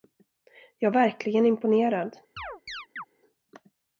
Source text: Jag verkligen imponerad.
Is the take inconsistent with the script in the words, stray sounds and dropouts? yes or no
yes